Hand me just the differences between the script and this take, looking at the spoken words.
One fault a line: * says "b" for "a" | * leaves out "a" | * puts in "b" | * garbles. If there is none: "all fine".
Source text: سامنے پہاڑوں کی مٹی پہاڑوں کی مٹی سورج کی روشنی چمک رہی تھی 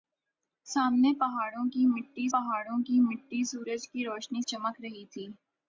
all fine